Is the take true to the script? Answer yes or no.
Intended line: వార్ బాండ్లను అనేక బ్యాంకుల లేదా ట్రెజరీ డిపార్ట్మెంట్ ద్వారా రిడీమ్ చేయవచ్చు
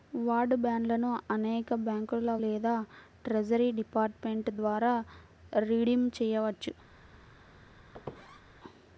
yes